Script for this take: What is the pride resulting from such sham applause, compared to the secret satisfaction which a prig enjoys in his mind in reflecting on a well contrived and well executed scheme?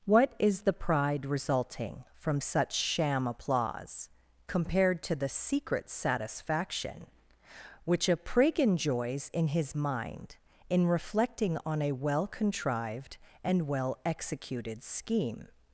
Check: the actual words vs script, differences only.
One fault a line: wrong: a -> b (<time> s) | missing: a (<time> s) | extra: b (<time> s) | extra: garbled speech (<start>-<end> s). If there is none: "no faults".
no faults